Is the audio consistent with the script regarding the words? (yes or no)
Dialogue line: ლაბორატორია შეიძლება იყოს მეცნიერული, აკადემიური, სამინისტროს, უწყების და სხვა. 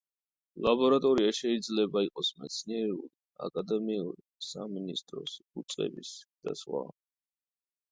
yes